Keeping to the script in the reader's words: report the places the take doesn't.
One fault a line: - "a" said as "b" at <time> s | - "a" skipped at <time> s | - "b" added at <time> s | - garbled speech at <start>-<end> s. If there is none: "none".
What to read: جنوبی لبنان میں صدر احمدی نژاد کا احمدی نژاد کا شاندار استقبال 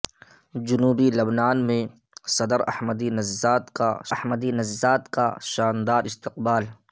none